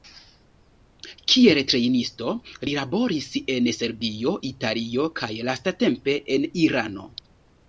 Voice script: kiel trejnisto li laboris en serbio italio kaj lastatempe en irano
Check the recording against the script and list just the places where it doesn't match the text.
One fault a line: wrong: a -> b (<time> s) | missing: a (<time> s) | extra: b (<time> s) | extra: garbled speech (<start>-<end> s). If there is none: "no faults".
no faults